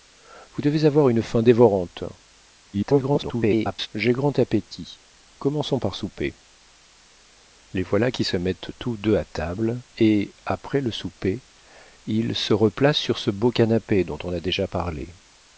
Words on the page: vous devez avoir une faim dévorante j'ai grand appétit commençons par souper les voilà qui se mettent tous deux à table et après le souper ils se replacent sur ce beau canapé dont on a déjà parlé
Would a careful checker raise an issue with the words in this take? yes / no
yes